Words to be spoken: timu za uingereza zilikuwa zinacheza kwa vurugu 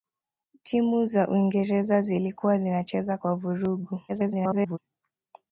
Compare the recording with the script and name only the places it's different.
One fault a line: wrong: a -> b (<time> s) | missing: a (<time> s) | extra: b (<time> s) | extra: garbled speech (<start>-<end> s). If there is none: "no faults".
extra: garbled speech (4.1-4.8 s)